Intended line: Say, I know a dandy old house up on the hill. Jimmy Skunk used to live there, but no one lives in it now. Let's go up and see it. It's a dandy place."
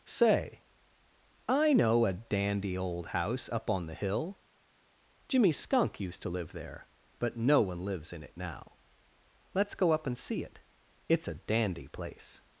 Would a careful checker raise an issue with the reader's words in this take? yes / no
no